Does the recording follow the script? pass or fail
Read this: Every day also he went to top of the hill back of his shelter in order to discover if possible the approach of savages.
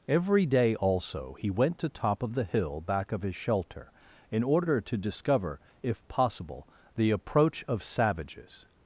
pass